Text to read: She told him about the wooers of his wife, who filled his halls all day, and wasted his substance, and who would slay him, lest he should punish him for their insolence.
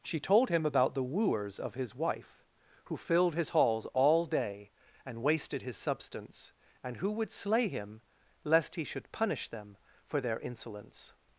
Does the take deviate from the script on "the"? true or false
false